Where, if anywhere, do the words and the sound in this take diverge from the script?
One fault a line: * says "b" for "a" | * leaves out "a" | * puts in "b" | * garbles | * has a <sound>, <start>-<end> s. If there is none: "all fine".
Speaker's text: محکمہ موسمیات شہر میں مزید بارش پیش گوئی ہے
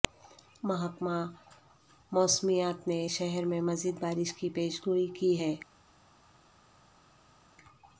* puts in "نے"
* puts in "کی"
* puts in "کی"